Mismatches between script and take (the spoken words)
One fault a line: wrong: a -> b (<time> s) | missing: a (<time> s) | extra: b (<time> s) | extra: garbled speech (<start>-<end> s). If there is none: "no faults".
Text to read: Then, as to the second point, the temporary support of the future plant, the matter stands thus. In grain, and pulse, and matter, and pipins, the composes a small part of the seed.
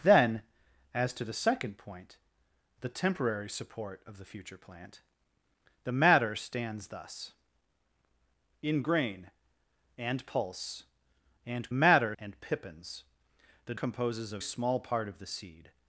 no faults